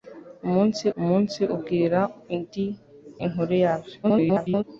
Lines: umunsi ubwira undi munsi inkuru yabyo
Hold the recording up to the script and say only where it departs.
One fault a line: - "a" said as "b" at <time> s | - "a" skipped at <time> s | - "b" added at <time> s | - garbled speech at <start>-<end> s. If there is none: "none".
- "umunsi" added at 1.0 s
- "munsi" skipped at 2.6 s
- garbled speech at 4.0-4.6 s